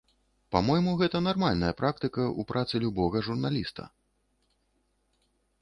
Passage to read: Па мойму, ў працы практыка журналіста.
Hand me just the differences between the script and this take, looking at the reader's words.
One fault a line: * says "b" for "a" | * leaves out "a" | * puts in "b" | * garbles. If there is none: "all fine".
* puts in "гэта нармальная практыка"
* says "любога" for "практыка"